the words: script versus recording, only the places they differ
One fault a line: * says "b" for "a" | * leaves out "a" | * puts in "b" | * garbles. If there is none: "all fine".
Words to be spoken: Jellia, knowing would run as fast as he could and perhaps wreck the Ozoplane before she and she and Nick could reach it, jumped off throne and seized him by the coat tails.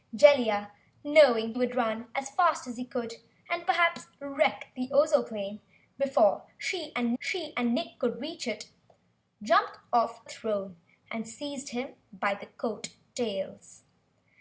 all fine